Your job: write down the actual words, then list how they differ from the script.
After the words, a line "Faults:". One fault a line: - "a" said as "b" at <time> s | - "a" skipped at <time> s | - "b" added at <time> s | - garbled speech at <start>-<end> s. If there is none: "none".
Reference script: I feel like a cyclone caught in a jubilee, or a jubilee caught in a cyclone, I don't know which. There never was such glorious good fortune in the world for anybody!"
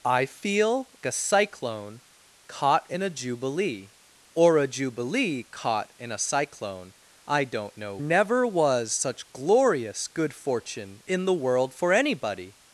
I feel a cyclone caught in a jubilee, or a jubilee caught in a cyclone, I don't know never was such glorious good fortune in the world for anybody!"
Faults:
- "like" skipped at 0.9 s
- "which There" skipped at 8.0 s